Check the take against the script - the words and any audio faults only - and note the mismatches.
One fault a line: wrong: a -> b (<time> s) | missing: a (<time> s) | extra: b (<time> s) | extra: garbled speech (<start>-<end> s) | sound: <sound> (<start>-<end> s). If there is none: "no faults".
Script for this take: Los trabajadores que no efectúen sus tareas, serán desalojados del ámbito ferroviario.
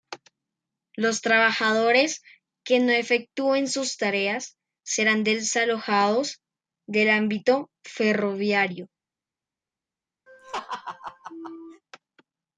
sound: laugh (10.3-11.8 s)